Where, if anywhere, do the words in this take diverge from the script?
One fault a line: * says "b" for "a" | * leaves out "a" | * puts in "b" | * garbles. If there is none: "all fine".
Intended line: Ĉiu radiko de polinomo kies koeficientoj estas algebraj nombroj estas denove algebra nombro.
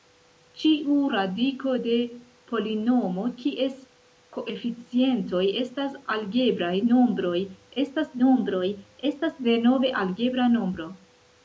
* puts in "nombroj estas"